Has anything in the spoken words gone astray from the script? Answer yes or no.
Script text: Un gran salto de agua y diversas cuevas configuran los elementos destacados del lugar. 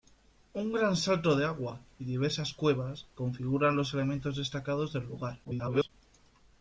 yes